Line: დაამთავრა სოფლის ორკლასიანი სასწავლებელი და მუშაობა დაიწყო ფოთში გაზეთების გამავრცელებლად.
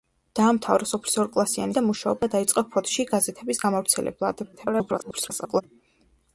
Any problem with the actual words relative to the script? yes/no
yes